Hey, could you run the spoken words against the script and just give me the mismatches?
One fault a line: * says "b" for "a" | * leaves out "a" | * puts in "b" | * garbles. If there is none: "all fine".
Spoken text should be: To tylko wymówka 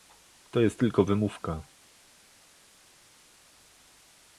* puts in "jest"